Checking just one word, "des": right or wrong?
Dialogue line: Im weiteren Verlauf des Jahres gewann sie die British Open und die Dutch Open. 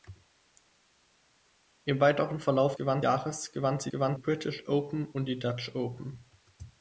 wrong